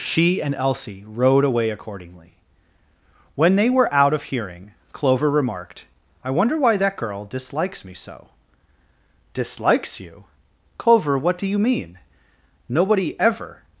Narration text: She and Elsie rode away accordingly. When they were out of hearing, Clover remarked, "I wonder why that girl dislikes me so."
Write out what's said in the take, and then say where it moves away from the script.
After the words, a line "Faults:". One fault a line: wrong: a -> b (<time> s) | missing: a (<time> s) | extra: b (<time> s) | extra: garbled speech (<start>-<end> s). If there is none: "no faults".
She and Elsie rode away accordingly. When they were out of hearing, Clover remarked, "I wonder why that girl dislikes me so." "Dislikes you! Clover, what do you mean? Nobody ever
Faults:
extra: Dislikes you Clover what do you mean Nobody ever (9.3 s)